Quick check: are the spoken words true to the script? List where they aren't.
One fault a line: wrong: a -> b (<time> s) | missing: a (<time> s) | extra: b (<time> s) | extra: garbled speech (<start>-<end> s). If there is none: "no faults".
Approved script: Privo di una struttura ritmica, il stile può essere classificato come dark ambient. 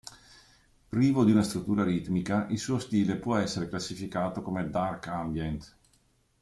extra: suo (2.6 s)